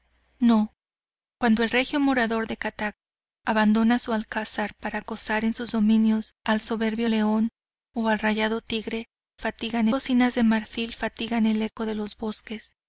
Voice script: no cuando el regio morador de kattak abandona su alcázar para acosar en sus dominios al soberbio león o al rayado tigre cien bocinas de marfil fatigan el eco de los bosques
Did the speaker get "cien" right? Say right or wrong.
wrong